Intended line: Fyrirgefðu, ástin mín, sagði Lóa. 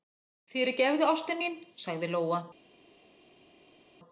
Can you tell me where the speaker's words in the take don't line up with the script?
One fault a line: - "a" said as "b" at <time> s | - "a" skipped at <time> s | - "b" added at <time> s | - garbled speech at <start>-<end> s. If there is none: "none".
none